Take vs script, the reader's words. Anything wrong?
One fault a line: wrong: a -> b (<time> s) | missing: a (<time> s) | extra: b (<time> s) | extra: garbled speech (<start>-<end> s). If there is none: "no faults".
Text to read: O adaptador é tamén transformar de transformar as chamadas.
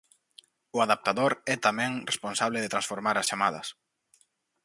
wrong: transformar -> responsable (2.1 s)